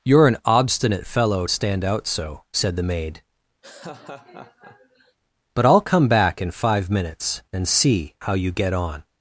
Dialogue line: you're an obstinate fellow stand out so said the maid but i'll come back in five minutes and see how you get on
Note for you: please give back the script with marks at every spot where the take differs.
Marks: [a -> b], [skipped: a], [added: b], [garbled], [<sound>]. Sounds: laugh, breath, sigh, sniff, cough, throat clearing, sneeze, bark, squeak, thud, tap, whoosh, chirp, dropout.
you're an obstinate fellow stand out so said the maid [laugh] but i'll come back in five minutes and see how you get on